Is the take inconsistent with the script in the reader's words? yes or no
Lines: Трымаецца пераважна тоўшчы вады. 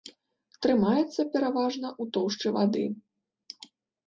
yes